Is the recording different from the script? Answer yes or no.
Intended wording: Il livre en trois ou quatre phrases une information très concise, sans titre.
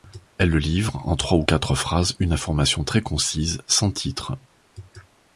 yes